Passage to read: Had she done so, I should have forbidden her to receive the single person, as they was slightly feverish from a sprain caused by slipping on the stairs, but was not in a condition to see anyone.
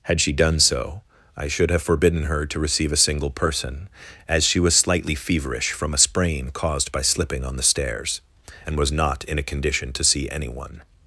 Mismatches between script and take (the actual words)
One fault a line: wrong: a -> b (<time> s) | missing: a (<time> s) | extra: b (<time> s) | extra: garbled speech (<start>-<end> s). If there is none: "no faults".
wrong: the -> a (2.9 s)
wrong: they -> she (4.4 s)
wrong: but -> and (8.7 s)